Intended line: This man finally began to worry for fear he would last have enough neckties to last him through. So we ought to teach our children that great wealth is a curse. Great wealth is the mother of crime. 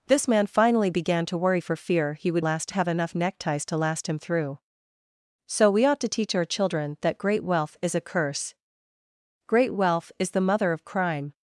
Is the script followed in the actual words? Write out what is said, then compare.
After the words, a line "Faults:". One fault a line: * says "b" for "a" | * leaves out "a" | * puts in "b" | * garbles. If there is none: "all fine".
This man finally began to worry for fear he would last have enough neckties to last him through. So we ought to teach our children that great wealth is a curse. Great wealth is the mother of crime.
Faults:
all fine